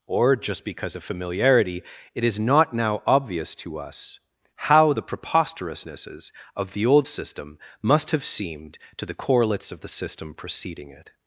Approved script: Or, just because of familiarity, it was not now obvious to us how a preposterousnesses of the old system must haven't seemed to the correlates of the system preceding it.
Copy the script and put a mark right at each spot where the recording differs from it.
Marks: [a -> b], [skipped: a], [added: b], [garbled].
Or, just because of familiarity, it [was -> is] not now obvious to us how [a -> the] preposterousnesses of the old system must [haven't -> have] seemed to the correlates of the system preceding it.